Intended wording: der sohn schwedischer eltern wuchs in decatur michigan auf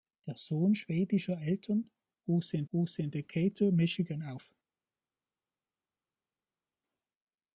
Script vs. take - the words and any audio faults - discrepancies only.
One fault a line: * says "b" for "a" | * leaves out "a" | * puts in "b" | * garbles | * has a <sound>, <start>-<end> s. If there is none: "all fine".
* puts in "wuchs in"